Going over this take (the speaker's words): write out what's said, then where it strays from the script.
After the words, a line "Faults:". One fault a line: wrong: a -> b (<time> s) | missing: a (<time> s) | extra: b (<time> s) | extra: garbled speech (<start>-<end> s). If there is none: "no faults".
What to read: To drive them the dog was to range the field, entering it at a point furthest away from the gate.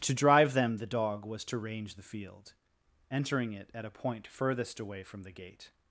To drive them the dog was to range the field, entering it at a point furthest away from the gate.
Faults:
no faults